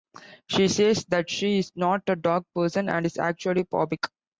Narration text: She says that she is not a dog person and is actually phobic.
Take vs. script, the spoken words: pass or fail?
pass